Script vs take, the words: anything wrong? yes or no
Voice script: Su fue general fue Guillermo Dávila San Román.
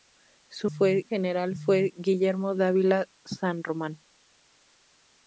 no